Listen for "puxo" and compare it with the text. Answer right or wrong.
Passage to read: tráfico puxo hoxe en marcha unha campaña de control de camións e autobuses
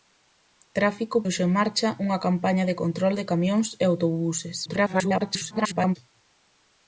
wrong